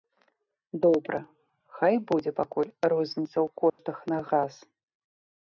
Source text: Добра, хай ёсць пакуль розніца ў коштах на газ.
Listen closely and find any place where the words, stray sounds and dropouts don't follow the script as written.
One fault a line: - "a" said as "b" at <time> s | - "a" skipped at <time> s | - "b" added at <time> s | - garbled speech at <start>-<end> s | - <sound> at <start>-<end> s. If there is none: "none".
- "ёсць" said as "будзе" at 2.1 s
- dropout at 3.7-3.8 s